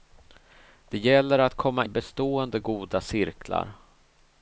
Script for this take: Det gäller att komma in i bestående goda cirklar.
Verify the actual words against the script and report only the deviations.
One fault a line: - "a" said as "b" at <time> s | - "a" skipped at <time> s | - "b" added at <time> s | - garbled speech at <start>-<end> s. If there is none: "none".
- "in" skipped at 1.9 s